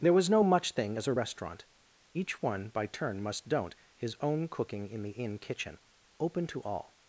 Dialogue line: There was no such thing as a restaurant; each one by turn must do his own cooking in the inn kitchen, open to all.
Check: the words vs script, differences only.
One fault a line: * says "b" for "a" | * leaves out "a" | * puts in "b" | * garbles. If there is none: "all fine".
* says "much" for "such"
* says "don't" for "do"